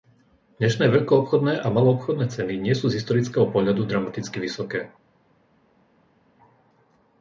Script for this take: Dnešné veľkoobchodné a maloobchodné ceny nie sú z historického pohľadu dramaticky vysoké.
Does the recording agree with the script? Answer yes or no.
yes